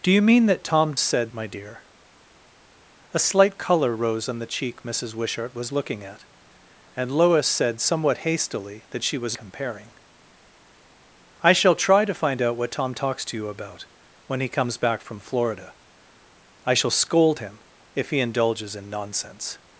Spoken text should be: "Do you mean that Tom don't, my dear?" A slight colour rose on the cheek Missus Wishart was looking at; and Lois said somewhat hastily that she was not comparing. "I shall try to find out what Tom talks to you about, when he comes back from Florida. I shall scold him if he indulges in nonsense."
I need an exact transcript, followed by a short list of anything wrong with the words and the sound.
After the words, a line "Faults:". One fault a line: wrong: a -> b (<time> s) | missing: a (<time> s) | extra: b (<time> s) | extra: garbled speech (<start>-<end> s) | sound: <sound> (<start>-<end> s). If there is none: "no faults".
"Do you mean that Tom said, my dear?" A slight colour rose on the cheek Missus Wishart was looking at; and Lois said somewhat hastily that she was comparing. "I shall try to find out what Tom talks to you about, when he comes back from Florida. I shall scold him if he indulges in nonsense."
Faults:
wrong: don't -> said (1.0 s)
missing: not (9.4 s)